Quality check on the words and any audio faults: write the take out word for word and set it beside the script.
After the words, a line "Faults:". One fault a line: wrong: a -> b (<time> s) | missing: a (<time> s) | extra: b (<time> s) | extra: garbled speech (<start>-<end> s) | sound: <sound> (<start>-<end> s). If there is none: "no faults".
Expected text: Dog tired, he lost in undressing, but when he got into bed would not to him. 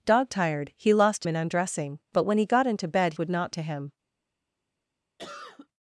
Dog tired, he lost in undressing, but when he got into bed would not to him.
Faults:
sound: cough (5.2-5.7 s)